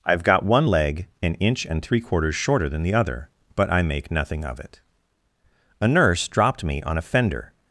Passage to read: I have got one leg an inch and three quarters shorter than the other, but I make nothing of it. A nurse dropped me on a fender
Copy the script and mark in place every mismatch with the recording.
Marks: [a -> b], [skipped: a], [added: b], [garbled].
I have got one leg an inch and three quarters shorter than the other, but I make nothing of it. A nurse dropped me on a fender